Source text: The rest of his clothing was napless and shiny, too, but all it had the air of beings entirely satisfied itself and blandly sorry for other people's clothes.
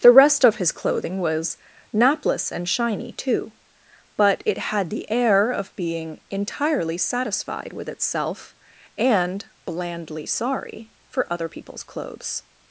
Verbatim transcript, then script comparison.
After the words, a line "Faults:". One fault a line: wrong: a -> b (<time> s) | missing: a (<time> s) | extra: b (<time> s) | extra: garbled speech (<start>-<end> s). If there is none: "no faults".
The rest of his clothing was napless and shiny, too, but it had the air of being entirely satisfied with itself and blandly sorry for other people's clothes.
Faults:
missing: all (4.4 s)
wrong: beings -> being (5.8 s)
extra: with (7.7 s)